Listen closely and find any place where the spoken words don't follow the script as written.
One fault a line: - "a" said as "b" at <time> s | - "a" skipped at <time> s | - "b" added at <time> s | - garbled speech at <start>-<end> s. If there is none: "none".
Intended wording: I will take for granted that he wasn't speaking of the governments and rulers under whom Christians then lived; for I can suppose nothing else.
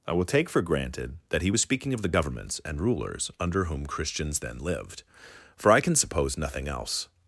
- "wasn't" said as "was" at 1.5 s